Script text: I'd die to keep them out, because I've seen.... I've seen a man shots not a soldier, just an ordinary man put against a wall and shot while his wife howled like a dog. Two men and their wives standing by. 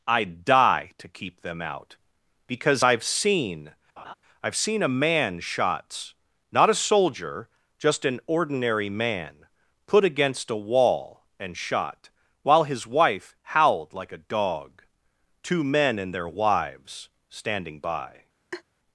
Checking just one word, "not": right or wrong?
right